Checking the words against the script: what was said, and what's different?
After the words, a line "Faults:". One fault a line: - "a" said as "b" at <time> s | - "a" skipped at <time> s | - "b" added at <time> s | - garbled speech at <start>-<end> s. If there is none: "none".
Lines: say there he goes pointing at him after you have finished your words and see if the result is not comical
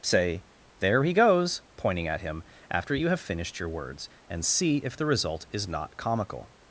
say there he goes pointing at him after you have finished your words and see if the result is not comical
Faults:
none